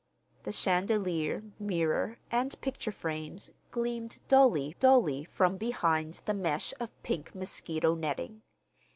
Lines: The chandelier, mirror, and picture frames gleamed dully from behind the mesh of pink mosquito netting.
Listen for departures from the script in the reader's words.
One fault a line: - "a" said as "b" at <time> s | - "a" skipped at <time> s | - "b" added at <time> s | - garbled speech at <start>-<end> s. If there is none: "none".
- "dully" added at 4.8 s